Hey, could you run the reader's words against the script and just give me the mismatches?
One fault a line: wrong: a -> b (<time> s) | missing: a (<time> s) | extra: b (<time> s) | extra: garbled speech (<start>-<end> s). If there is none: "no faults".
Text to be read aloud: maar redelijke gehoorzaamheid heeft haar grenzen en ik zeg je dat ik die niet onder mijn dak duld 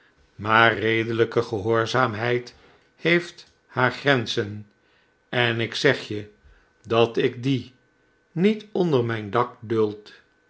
no faults